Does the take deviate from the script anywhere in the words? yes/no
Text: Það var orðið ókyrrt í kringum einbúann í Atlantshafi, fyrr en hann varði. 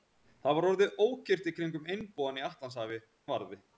yes